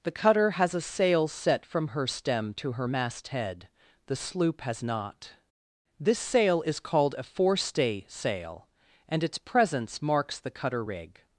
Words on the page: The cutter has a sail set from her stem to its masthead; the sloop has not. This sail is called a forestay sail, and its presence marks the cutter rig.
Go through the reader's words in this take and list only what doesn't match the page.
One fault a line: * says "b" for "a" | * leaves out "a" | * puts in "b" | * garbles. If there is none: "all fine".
* says "her" for "its"